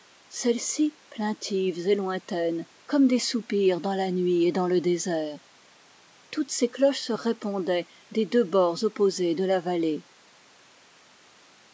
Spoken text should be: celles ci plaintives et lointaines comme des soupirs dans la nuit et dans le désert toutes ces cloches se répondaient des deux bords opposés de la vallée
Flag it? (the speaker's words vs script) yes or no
no